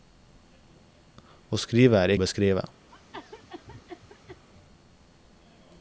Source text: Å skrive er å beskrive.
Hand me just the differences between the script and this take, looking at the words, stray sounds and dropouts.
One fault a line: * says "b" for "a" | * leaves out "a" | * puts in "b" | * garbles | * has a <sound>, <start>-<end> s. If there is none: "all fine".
* has a cough, 2.9-4.4 s